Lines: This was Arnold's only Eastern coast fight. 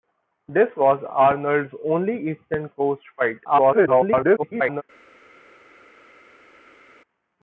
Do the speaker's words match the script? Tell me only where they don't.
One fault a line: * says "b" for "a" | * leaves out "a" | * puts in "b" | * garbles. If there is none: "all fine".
* garbles